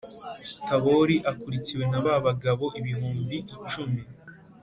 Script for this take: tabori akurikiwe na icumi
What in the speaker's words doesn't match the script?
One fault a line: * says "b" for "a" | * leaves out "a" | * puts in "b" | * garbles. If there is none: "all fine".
* puts in "ba bagabo ibihumbi"